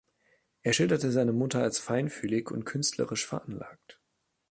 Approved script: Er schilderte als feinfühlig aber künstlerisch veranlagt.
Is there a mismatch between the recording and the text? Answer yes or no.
yes